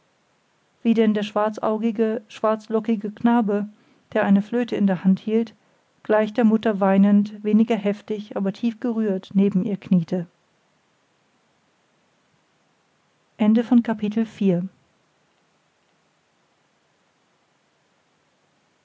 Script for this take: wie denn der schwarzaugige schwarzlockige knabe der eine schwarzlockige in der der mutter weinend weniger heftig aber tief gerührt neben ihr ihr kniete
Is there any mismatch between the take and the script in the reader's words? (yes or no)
yes